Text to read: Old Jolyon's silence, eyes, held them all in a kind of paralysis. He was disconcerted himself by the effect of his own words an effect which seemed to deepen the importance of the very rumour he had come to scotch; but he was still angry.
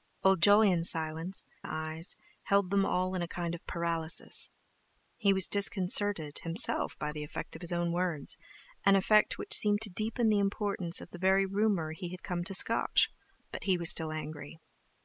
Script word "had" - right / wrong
right